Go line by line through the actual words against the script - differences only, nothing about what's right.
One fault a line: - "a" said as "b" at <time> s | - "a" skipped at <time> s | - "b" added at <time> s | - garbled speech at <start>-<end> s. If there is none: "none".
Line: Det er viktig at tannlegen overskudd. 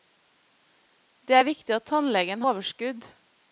none